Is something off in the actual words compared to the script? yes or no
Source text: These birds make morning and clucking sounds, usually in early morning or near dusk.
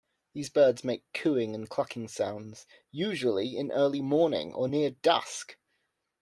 yes